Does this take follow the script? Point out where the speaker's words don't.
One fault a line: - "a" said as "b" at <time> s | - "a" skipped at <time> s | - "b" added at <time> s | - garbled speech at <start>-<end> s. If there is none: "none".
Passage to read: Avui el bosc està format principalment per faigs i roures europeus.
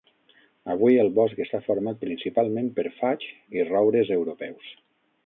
none